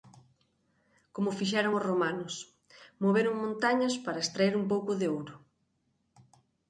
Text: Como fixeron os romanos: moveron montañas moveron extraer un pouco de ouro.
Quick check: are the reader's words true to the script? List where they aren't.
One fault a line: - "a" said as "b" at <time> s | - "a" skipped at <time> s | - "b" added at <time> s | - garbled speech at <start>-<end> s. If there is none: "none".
- "moveron" said as "para" at 4.0 s